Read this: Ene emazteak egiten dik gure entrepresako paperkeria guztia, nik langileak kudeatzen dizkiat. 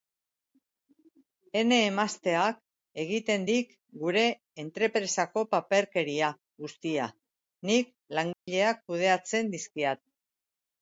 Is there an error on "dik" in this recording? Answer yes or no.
no